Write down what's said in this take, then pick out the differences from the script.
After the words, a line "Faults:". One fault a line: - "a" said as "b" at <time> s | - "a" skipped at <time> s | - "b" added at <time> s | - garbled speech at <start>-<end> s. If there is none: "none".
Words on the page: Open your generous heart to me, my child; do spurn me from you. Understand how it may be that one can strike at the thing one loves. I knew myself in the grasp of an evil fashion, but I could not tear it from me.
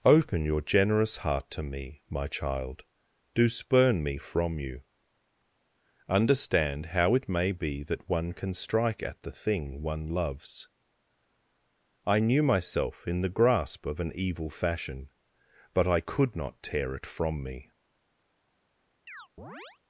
Open your generous heart to me, my child; do spurn me from you. Understand how it may be that one can strike at the thing one loves. I knew myself in the grasp of an evil fashion, but I could not tear it from me.
Faults:
none